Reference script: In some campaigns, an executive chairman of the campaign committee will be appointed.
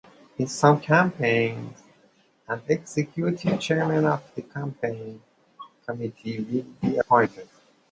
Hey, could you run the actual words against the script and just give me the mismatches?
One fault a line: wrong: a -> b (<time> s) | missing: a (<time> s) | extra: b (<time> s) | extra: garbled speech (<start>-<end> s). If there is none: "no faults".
no faults